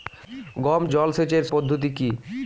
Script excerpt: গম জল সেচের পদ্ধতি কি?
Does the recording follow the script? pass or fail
pass